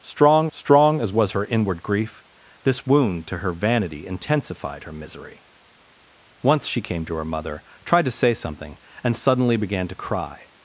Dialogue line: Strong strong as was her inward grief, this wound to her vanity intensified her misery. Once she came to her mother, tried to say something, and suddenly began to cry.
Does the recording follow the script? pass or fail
pass